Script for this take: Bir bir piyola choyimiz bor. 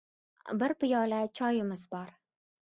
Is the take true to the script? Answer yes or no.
no